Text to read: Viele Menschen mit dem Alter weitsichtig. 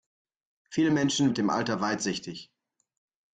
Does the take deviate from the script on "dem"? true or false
false